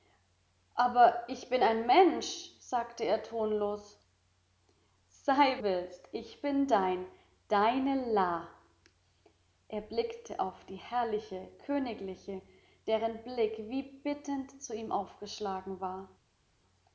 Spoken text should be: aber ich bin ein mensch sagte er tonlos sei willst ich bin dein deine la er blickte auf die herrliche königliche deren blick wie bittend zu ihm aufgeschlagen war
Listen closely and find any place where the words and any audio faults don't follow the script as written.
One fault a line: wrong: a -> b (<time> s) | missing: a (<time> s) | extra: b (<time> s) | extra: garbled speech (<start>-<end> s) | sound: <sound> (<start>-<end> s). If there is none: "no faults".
no faults